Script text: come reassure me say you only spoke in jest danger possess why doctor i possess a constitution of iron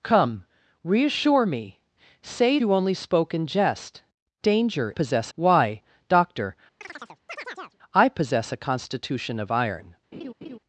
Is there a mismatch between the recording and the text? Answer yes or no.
no